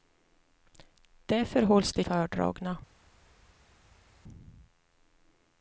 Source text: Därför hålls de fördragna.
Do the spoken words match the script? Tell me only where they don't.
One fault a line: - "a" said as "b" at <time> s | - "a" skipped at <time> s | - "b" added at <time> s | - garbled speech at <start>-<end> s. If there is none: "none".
none